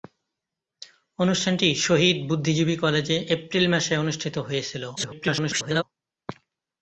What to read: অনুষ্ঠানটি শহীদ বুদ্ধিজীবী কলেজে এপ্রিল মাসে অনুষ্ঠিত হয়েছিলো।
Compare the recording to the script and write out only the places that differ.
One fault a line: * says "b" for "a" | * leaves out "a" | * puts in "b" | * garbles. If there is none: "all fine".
* garbles